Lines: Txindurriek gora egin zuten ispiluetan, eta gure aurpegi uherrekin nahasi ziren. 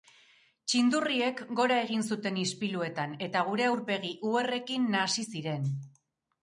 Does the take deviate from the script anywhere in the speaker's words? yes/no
no